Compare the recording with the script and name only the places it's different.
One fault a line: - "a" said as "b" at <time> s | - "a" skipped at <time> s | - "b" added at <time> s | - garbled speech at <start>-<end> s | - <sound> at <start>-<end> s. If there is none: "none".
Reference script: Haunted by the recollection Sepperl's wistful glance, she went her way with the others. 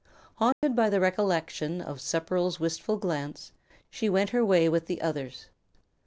- dropout at 0.5-0.6 s
- "of" added at 1.8 s